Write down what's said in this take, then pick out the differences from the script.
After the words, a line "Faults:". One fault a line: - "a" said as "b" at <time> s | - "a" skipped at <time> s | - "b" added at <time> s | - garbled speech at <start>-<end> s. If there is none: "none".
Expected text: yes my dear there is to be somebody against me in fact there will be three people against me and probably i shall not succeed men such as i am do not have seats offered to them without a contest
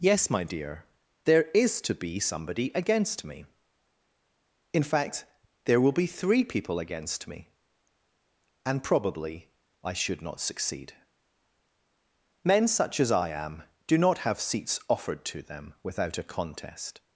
yes my dear there is to be somebody against me in fact there will be three people against me and probably i should not succeed men such as i am do not have seats offered to them without a contest
Faults:
- "shall" said as "should" at 9.9 s